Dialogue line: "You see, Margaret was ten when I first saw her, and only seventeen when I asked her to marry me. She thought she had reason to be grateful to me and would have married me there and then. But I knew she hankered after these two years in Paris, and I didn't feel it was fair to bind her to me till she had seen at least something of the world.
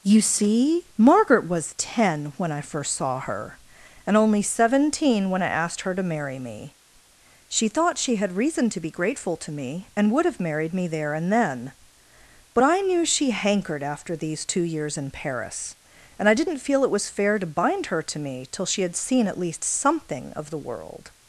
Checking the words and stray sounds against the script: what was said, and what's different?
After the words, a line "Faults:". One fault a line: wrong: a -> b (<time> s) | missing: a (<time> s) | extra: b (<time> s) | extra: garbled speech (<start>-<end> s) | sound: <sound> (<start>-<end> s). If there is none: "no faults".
"You see, Margaret was ten when I first saw her, and only seventeen when I asked her to marry me. She thought she had reason to be grateful to me and would have married me there and then. But I knew she hankered after these two years in Paris, and I didn't feel it was fair to bind her to me till she had seen at least something of the world.
Faults:
no faults